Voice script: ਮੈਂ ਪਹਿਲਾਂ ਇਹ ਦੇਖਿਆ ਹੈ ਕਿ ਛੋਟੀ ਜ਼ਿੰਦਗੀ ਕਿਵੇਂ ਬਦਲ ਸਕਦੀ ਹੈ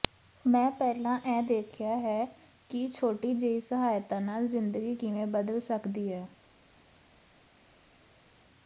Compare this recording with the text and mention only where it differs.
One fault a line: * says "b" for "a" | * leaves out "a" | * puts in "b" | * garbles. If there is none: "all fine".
* puts in "ਜਿਹੀ ਸਹਾਇਤਾ ਨਾਲ"